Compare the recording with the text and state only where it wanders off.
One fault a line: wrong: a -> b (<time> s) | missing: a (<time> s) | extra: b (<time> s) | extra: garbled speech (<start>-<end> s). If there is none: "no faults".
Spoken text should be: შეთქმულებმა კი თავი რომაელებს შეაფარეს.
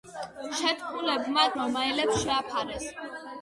missing: კი თავი (1.4 s)